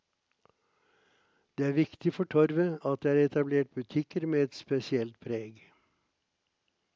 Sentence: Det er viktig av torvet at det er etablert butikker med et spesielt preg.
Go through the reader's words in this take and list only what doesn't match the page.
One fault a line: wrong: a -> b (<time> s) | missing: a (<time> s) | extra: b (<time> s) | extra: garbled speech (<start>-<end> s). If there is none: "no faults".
wrong: av -> for (2.1 s)